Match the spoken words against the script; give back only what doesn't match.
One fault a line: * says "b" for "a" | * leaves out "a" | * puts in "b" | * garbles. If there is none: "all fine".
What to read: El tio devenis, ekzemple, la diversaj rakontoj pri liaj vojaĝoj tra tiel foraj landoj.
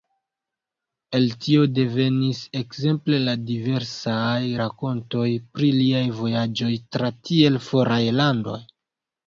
all fine